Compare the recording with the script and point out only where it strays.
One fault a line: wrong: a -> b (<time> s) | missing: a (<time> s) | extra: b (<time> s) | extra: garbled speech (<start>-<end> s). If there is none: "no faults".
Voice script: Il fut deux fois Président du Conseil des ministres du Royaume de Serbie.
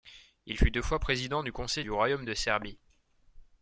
missing: des ministres (1.8 s)